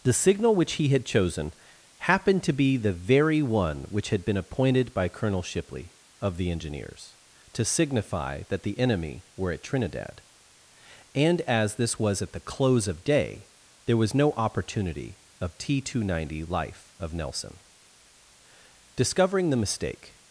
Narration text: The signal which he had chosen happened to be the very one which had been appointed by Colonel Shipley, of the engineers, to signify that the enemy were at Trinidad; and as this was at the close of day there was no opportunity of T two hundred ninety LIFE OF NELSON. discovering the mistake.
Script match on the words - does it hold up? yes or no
yes